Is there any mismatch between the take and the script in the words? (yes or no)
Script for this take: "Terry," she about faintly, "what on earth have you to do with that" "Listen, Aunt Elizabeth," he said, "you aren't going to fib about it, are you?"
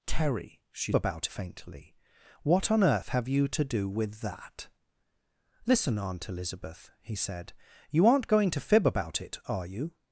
no